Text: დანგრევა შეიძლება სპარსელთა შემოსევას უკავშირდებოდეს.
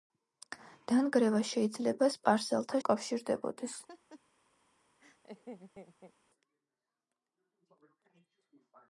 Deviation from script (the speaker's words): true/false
true